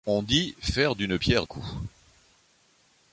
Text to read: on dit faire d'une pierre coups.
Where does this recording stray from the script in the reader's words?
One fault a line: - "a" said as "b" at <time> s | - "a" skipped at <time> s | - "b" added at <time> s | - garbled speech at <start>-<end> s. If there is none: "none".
none